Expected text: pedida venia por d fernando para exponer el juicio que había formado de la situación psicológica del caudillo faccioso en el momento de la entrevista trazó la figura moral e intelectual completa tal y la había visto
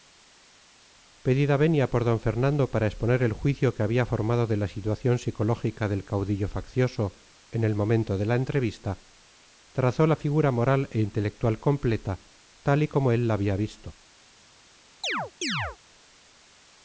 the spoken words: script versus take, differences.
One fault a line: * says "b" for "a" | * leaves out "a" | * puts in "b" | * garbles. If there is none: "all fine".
* puts in "como él"